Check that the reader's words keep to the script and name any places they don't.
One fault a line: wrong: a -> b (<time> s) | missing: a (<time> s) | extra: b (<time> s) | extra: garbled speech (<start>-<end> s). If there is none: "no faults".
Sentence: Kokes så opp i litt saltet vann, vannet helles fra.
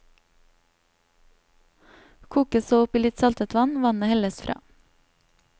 no faults